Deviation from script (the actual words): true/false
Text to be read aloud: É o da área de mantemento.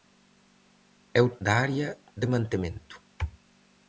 false